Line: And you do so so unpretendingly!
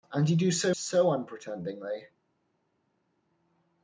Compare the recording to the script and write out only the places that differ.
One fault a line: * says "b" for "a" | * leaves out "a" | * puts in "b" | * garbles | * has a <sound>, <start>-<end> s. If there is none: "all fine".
all fine